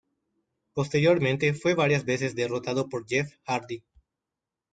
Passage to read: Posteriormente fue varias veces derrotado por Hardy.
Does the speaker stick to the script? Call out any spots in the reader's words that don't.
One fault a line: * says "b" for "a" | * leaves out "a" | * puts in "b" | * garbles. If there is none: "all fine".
* puts in "Jeff"